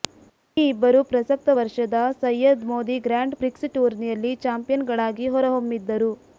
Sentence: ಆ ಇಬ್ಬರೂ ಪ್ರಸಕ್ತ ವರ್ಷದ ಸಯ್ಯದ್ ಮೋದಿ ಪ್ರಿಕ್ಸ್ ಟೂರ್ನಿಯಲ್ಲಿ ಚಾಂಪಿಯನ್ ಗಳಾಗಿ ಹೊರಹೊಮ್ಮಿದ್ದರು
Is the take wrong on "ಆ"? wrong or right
wrong